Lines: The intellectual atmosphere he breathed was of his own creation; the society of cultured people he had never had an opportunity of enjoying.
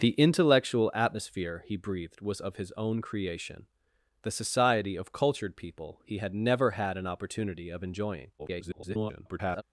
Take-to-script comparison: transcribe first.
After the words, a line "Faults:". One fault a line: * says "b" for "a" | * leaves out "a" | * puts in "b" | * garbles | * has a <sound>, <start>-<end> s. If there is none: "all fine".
The intellectual atmosphere he breathed was of his own creation; the society of cultured people he had never had an opportunity of enjoying. [garbled]
Faults:
* garbles